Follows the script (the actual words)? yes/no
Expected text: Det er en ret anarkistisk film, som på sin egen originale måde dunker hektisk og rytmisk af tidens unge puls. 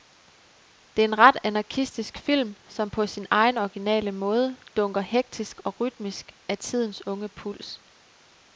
yes